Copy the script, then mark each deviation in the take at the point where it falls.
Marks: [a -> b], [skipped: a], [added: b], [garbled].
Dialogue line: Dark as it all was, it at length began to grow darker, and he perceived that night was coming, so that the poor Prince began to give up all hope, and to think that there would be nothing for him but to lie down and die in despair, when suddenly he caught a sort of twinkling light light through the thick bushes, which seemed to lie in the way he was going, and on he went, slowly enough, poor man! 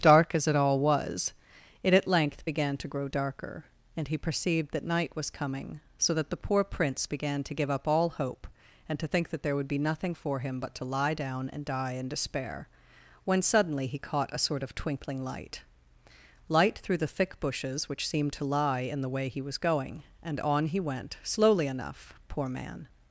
Dark as it all was, it at length began to grow darker, and he perceived that night was coming, so that the poor Prince began to give up all hope, and to think that there would be nothing for him but to lie down and die in despair, when suddenly he caught a sort of twinkling light light through the thick bushes, which seemed to lie in the way he was going, and on he went, slowly enough, poor man!